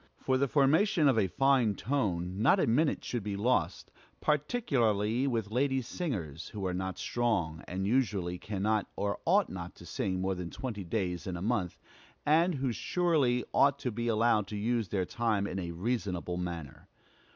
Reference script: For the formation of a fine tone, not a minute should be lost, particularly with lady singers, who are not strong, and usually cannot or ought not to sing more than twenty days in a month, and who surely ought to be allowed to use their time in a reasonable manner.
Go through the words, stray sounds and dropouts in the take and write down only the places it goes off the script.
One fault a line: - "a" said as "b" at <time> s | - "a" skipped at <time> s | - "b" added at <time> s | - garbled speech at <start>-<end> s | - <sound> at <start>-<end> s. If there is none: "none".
none